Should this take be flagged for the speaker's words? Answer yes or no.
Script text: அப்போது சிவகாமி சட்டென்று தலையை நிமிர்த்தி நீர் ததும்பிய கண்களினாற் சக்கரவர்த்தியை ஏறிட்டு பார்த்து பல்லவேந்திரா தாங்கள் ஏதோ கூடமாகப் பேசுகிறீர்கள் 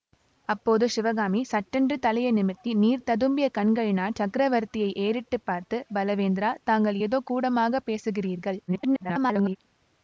yes